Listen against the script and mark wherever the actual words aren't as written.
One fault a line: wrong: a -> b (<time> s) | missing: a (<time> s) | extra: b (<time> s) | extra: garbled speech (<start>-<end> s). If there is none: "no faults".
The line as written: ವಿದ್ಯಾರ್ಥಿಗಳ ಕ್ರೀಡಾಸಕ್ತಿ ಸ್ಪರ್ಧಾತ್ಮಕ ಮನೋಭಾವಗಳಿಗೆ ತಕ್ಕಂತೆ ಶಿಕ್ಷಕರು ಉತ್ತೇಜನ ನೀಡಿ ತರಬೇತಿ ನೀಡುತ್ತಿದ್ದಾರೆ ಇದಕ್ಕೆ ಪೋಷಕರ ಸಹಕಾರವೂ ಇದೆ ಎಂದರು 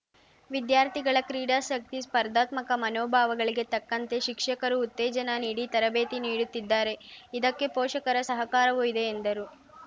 no faults